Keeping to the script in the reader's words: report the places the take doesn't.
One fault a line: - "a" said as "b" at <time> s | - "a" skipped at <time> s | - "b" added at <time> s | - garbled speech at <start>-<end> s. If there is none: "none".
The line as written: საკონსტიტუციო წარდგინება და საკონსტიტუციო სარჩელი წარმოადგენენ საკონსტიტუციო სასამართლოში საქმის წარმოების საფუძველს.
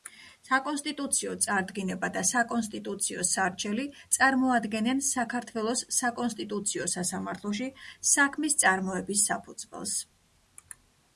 - "საქართველოს" added at 5.1 s